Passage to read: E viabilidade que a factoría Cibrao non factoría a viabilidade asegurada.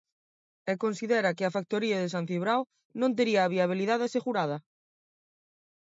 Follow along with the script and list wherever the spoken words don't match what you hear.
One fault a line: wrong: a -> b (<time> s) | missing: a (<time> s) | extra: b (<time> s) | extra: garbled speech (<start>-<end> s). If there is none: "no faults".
wrong: viabilidade -> considera (0.8 s)
extra: de San (2.0 s)
wrong: factoría -> tería (3.2 s)